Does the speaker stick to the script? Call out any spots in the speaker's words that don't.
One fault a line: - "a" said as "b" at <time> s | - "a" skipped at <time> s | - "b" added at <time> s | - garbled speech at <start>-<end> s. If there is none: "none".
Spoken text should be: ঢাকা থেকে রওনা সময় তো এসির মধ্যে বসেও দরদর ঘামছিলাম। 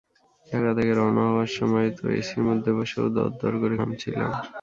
- "হওয়ার" added at 1.3 s
- "করে" added at 3.6 s